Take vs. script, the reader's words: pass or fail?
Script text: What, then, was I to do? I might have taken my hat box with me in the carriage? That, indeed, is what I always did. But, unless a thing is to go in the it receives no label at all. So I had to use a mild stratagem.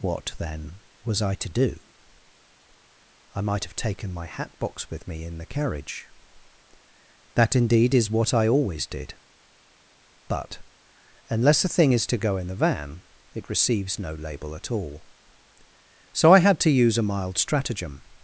fail